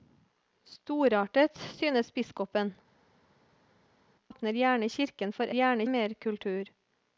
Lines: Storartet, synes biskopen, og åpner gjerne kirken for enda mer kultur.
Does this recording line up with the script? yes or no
no